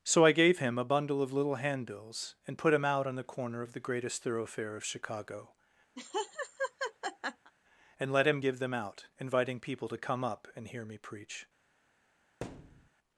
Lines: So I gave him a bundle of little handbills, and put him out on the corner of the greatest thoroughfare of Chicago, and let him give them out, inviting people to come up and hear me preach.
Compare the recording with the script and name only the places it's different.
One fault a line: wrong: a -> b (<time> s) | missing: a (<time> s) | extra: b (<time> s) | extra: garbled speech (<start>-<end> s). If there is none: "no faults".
no faults